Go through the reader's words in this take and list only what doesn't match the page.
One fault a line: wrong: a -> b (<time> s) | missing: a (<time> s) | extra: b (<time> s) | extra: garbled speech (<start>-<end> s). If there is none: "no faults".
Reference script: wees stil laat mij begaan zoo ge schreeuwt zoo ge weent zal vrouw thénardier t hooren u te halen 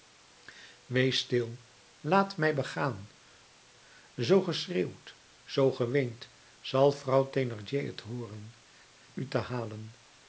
no faults